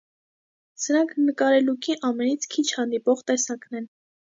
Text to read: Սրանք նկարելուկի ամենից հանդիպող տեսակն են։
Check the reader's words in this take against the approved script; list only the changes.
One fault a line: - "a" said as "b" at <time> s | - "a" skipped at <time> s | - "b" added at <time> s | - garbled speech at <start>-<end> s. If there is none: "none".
- "քիչ" added at 2.6 s